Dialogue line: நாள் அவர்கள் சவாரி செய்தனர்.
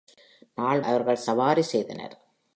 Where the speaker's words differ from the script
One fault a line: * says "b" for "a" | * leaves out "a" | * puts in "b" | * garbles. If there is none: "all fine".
all fine